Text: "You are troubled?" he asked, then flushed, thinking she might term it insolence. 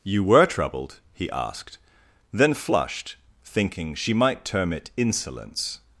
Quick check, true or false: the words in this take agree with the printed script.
false